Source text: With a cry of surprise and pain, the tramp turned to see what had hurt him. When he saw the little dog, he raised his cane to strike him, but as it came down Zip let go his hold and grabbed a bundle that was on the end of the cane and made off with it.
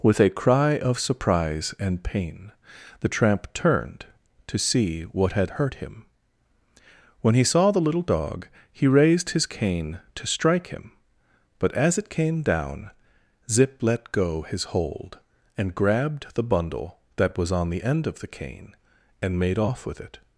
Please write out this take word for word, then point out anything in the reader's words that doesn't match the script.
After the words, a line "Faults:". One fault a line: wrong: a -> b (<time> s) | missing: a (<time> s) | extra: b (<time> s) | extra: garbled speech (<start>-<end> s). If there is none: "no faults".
With a cry of surprise and pain, the tramp turned to see what had hurt him. When he saw the little dog, he raised his cane to strike him, but as it came down Zip let go his hold and grabbed the bundle that was on the end of the cane and made off with it.
Faults:
wrong: a -> the (16.3 s)